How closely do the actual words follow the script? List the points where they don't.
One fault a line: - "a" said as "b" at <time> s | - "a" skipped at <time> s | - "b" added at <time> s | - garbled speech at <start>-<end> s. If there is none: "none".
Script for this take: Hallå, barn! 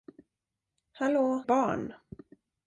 none